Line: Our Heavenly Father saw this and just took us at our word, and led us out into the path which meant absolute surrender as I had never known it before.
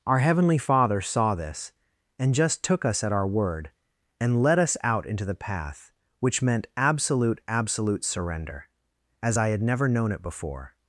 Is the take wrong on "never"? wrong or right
right